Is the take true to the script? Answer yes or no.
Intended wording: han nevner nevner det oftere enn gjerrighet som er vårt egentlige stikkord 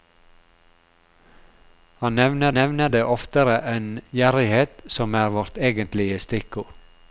yes